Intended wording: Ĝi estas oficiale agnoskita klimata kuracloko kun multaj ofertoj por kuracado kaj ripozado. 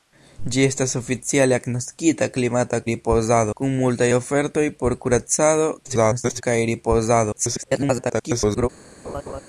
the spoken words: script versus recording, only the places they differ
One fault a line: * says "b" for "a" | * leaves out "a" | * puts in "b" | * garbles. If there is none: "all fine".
* says "ripozado" for "kuracloko"
* garbles
* garbles